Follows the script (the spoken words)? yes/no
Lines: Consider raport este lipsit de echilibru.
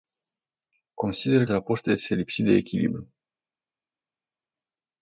yes